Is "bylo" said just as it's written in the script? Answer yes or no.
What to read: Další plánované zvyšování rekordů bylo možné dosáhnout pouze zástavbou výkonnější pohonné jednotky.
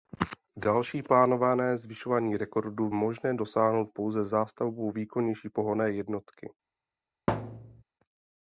no